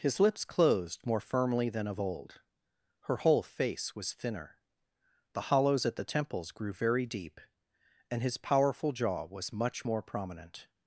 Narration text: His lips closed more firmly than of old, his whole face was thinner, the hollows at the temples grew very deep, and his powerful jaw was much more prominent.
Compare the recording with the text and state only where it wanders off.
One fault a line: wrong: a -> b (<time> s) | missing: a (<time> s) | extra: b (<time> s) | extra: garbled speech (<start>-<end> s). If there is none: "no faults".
wrong: his -> her (3.0 s)